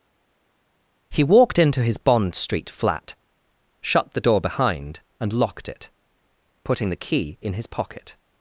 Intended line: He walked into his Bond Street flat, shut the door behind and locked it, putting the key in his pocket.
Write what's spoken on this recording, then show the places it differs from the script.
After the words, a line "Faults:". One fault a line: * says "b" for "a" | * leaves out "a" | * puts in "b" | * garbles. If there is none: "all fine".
He walked into his Bond Street flat, shut the door behind and locked it, putting the key in his pocket.
Faults:
all fine